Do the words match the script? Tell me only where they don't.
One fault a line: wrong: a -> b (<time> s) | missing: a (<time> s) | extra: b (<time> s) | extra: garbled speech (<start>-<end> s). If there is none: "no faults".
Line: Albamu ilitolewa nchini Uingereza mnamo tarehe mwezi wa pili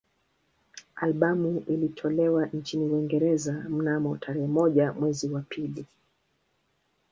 extra: moja (4.5 s)